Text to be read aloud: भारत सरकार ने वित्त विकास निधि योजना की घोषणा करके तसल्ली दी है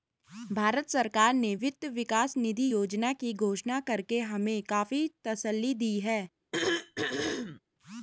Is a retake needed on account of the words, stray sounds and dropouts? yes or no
yes